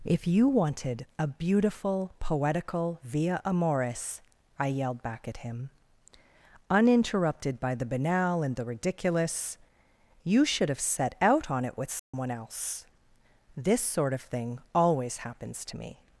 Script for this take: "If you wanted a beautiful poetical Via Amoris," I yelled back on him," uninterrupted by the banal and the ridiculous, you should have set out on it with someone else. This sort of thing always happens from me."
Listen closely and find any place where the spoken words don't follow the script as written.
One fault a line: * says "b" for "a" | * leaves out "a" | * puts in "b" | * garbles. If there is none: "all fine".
* says "at" for "on"
* says "to" for "from"